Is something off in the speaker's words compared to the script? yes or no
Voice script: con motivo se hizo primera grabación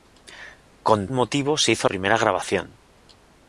no